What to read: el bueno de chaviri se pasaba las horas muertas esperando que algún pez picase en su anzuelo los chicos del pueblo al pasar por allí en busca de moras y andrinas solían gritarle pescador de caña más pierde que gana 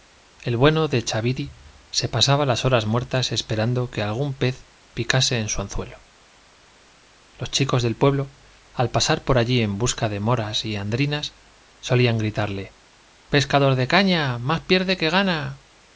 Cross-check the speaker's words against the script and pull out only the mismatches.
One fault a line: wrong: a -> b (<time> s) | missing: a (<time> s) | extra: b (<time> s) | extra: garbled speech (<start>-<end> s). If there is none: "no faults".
no faults